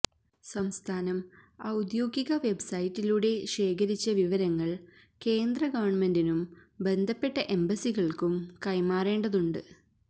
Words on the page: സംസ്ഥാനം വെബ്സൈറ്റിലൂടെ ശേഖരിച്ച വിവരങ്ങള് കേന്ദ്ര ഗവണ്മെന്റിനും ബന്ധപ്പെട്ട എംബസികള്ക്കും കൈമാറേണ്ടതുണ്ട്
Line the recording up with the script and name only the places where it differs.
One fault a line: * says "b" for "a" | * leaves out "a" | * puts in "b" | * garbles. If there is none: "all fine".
* puts in "ഔദ്യോഗിക"